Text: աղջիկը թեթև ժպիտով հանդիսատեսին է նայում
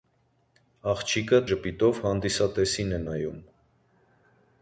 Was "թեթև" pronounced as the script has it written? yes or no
no